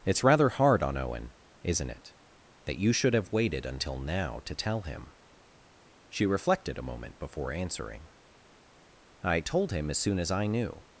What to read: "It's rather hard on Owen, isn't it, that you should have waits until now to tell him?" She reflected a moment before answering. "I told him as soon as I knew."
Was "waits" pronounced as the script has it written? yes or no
no